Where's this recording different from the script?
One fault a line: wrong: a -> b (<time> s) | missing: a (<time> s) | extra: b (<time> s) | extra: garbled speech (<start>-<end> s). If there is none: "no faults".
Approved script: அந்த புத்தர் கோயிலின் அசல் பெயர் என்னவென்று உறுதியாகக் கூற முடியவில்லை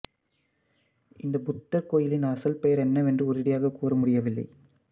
wrong: அந்த -> இந்த (1.2 s)